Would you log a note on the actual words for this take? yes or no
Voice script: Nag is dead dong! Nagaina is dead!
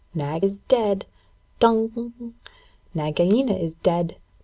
no